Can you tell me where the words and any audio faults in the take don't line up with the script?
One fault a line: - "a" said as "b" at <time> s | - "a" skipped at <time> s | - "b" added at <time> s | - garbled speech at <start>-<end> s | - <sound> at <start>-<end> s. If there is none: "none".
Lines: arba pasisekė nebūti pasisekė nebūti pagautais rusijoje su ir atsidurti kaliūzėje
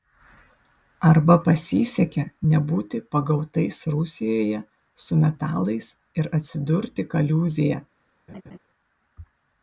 - "pasisekė nebūti" skipped at 3.0 s
- "metalais" added at 5.3 s
- laugh at 8.3-8.6 s